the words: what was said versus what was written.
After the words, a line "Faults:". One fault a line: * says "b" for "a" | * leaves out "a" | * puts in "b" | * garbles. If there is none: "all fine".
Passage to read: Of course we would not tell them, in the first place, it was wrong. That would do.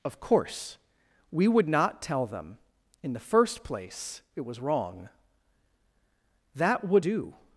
Of course we would not tell them, in the first place, it was wrong. That would do.
Faults:
all fine